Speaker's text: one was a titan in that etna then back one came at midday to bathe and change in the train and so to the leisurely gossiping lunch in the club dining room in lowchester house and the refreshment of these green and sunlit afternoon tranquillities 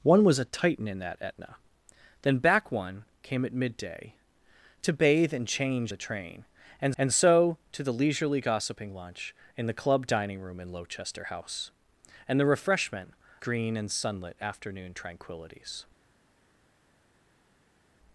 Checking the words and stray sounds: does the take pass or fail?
fail